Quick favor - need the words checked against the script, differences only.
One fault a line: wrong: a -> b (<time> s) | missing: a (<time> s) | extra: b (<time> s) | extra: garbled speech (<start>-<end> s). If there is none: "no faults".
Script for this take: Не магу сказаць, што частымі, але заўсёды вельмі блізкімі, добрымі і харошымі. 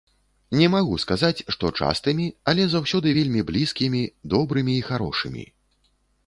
no faults